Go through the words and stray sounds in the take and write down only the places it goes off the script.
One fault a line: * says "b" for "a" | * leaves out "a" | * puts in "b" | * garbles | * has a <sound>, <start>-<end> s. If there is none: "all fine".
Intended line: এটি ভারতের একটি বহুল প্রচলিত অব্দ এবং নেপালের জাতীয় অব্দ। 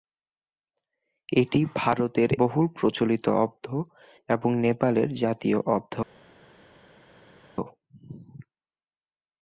* leaves out "একটি"